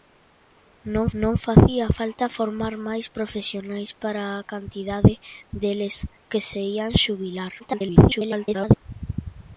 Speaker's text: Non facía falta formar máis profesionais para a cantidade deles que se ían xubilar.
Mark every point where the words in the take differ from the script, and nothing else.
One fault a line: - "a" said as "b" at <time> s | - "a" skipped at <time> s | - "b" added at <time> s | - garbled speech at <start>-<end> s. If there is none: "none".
- "non" added at 1.2 s
- garbled speech at 7.6-8.8 s